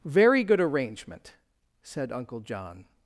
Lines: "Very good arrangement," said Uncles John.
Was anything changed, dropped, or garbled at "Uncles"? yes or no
yes